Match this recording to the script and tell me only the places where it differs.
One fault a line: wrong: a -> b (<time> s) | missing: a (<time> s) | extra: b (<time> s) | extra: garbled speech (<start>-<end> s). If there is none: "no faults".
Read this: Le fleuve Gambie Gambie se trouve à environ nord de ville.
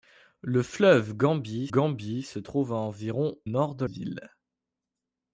no faults